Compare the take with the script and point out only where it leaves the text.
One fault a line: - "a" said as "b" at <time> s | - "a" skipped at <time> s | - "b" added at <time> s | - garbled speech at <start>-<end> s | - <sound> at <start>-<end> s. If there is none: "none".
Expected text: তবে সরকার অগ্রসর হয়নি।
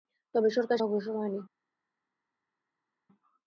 none